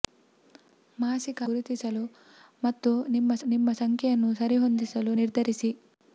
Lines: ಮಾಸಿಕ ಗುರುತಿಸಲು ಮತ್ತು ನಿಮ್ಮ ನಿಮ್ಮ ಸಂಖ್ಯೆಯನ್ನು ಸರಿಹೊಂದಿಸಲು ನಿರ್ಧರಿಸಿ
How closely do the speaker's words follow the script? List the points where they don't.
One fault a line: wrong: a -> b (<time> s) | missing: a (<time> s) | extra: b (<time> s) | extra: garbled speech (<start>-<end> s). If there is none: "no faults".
no faults